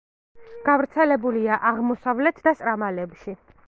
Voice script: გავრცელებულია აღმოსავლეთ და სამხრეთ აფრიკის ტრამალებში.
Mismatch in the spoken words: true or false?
true